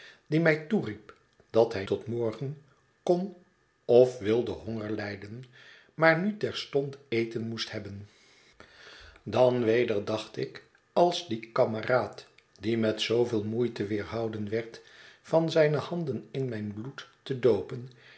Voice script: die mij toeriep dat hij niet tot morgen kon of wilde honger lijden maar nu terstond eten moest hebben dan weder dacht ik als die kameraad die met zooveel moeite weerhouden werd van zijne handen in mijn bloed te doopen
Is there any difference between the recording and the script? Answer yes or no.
yes